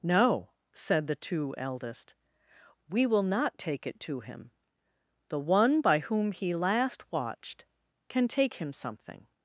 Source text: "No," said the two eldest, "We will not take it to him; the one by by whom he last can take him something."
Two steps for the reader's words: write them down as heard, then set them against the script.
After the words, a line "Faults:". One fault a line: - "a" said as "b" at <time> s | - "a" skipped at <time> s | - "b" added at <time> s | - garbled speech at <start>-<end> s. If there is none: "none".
"No," said the two eldest, "We will not take it to him; the one by whom he last watched, can take him something."
Faults:
- "by" skipped at 6.0 s
- "watched" added at 7.1 s